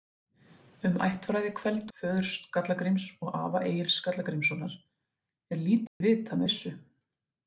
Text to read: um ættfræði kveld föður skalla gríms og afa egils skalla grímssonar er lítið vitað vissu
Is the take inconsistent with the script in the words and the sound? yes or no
yes